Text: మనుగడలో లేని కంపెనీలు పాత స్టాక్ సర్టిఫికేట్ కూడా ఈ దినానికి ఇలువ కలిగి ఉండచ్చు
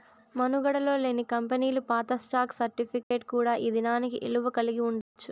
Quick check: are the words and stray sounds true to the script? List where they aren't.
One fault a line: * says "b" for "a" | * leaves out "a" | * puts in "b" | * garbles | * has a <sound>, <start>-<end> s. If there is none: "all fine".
* has a dropout, 3.0-3.1 s
* has a dropout, 5.0-5.2 s